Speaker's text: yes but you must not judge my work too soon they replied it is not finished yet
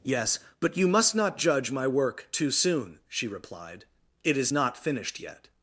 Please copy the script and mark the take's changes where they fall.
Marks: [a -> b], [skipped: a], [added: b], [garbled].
yes but you must not judge my work too soon [they -> she] replied it is not finished yet